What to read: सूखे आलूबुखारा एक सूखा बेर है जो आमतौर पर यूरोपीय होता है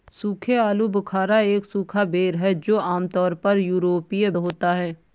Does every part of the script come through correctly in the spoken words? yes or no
yes